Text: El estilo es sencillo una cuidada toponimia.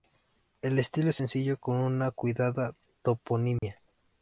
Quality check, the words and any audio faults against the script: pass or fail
fail